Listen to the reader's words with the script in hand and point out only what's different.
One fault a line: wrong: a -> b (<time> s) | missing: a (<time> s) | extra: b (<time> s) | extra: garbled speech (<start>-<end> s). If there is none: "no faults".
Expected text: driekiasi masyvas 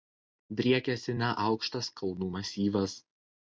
extra: neaukštas kalnų (1.2 s)